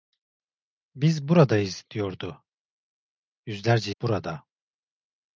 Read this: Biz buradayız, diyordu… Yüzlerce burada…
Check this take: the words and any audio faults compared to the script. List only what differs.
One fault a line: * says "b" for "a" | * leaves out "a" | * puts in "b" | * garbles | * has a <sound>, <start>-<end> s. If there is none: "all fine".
all fine